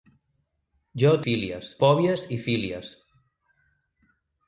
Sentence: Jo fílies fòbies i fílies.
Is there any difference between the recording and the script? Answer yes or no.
no